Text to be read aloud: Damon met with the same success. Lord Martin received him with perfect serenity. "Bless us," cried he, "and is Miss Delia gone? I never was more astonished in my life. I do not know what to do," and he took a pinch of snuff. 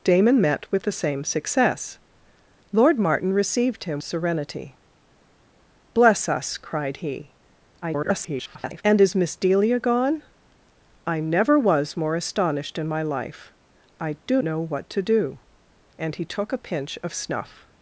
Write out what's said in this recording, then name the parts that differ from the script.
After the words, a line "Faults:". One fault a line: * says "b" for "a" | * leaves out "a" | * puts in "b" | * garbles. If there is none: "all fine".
Damon met with the same success. Lord Martin received him serenity. "Bless us," cried he, [garbled] "and is Miss Delia gone? I never was more astonished in my life. I do know what to do," and he took a pinch of snuff.
Faults:
* leaves out "with perfect"
* garbles
* leaves out "not"